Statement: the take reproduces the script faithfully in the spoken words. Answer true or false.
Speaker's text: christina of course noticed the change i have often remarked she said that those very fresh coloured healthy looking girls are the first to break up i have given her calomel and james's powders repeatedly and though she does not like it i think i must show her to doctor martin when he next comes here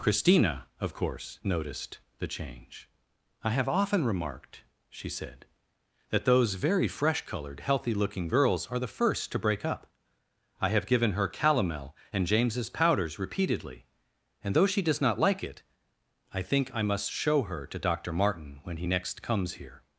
true